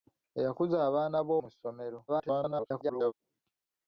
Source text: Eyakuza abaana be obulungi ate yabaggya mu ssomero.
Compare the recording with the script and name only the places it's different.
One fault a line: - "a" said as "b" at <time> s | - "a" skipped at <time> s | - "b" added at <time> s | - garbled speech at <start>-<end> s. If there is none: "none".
- "obulungi ate yabaggya" skipped at 1.3 s
- garbled speech at 2.1-3.1 s